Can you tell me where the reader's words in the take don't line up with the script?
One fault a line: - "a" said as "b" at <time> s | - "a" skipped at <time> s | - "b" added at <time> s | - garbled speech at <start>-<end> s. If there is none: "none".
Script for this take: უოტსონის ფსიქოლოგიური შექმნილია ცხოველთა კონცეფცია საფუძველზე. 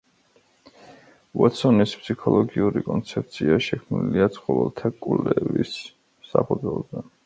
- "კონცეფცია" added at 2.9 s
- "კონცეფცია" said as "კვლევის" at 5.0 s